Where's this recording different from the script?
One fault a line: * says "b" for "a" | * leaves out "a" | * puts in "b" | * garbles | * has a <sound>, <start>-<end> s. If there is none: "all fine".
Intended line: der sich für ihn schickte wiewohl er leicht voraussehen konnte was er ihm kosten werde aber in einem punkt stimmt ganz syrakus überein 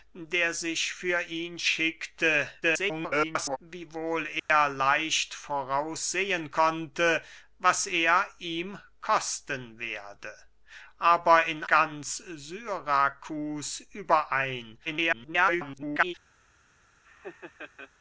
* garbles
* has a dropout, 4.4-4.5 s
* leaves out "einem punkt stimmt"
* garbles
* has a laugh, 17.0-17.9 s